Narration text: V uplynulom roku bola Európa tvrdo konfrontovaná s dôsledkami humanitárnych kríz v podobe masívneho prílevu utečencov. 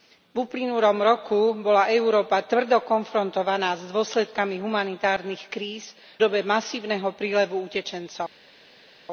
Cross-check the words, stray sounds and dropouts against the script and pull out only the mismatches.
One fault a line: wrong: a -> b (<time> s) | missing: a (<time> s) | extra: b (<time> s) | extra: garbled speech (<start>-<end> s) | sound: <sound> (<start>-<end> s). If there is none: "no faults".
missing: v (5.9 s)